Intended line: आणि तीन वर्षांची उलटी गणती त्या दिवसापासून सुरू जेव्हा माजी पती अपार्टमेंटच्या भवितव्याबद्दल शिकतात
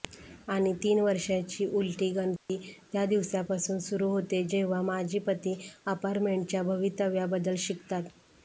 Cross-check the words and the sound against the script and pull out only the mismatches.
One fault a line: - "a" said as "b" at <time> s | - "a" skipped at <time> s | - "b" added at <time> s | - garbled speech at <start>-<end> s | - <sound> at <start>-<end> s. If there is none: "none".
- dropout at 2.4-2.5 s
- "होते" added at 4.1 s